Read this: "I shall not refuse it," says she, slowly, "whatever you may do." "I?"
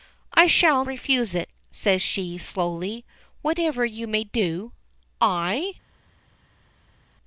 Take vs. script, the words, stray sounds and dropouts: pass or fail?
fail